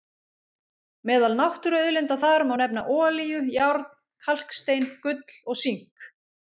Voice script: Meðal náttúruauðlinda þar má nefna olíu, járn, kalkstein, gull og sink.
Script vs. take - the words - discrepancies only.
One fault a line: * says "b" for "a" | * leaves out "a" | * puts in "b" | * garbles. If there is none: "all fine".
all fine